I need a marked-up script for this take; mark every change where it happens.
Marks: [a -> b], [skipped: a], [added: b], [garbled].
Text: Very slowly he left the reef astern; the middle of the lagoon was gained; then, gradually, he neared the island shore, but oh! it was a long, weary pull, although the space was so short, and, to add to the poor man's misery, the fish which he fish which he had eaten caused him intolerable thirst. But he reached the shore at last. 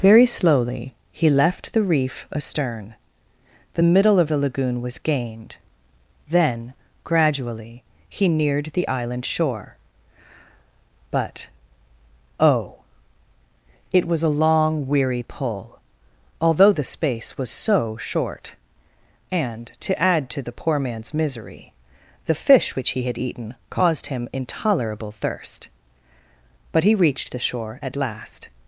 Very slowly he left the reef astern; the middle of the lagoon was gained; then, gradually, he neared the island shore, but oh! it was a long, weary pull, although the space was so short, and, to add to the poor man's misery, the fish which he [skipped: fish which he] had eaten caused him intolerable thirst. But he reached the shore at last.